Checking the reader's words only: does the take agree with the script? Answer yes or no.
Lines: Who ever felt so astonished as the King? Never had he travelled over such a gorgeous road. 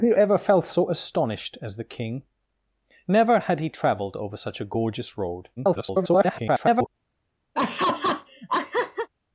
no